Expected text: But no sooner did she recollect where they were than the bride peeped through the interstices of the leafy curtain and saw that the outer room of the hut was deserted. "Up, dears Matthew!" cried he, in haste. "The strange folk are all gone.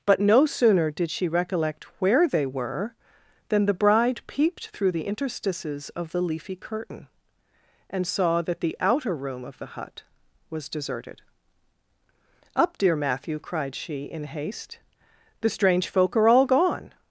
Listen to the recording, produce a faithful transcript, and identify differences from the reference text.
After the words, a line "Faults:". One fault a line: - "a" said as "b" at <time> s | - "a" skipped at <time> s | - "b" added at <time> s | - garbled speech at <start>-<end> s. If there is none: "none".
But no sooner did she recollect where they were than the bride peeped through the interstices of the leafy curtain and saw that the outer room of the hut was deserted. "Up, dear Matthew!" cried she, in haste. "The strange folk are all gone.
Faults:
- "dears" said as "dear" at 12.8 s
- "he" said as "she" at 13.7 s